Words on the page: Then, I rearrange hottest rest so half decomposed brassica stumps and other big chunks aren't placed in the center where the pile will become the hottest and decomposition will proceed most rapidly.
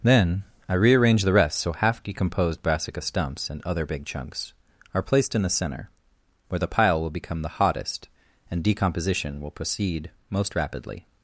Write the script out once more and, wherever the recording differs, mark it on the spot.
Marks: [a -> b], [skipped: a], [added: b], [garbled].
Then, I rearrange [hottest -> the] rest so half decomposed brassica stumps and other big chunks [aren't -> are] placed in the center where the pile will become the hottest and decomposition will proceed most rapidly.